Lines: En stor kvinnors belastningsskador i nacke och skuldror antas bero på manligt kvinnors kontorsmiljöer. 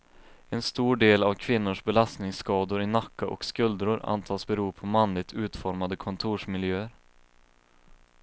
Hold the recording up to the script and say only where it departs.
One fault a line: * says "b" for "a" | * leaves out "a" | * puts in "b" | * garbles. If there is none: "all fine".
* puts in "del av"
* says "utformade" for "kvinnors"